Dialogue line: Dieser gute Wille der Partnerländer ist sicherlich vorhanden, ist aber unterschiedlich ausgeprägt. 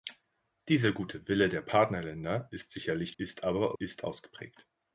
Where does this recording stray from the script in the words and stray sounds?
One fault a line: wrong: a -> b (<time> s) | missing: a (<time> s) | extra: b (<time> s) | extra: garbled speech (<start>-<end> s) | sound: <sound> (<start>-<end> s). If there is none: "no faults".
missing: vorhanden (3.1 s)
wrong: unterschiedlich -> ist (3.8 s)